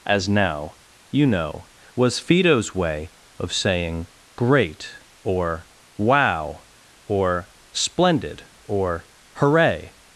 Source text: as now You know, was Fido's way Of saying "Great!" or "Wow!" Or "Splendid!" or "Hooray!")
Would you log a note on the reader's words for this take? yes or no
no